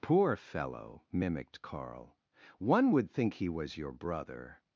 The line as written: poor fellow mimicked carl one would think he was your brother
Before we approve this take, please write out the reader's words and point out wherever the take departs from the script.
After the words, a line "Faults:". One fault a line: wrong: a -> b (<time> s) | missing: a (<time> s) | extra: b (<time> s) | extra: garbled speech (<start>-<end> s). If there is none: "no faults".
poor fellow mimicked carl one would think he was your brother
Faults:
no faults